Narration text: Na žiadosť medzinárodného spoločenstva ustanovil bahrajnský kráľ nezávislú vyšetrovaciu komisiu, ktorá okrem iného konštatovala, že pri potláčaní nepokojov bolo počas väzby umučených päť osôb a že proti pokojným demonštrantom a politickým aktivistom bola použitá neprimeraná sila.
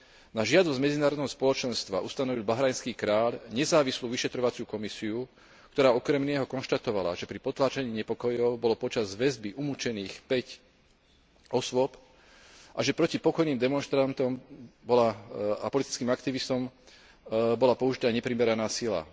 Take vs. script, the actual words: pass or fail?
pass